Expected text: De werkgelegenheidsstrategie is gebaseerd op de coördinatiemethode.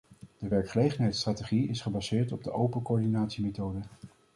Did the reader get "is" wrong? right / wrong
right